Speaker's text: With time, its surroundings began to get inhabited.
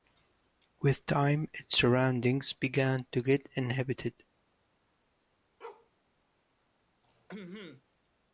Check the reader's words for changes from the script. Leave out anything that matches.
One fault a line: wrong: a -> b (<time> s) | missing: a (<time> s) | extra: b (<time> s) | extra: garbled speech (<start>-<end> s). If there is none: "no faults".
no faults